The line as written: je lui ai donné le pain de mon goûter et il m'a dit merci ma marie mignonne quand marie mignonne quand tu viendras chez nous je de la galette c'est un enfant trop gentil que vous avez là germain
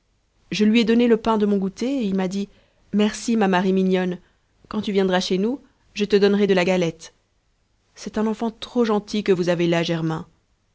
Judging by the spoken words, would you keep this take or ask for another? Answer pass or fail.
fail